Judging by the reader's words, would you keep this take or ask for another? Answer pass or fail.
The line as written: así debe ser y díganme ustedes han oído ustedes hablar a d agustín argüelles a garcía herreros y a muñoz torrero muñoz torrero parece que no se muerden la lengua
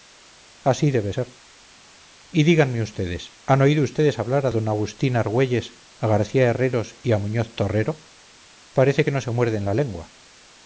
fail